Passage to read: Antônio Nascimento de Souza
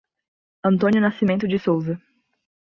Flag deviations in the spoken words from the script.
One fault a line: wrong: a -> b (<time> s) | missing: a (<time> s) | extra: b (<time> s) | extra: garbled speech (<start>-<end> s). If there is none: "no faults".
no faults